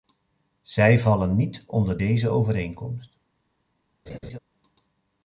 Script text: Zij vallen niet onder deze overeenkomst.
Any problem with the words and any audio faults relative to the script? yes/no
yes